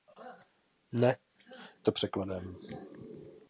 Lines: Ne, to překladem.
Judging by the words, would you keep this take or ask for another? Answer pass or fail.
pass